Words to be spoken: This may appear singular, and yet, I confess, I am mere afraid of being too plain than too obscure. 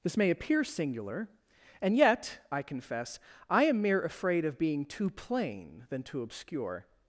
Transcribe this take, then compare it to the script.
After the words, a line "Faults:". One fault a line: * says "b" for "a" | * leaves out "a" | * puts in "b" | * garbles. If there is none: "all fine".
This may appear singular, and yet, I confess, I am mere afraid of being too plain than too obscure.
Faults:
all fine